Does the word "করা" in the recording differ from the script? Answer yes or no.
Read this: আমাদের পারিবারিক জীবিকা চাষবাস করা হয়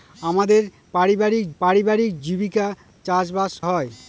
yes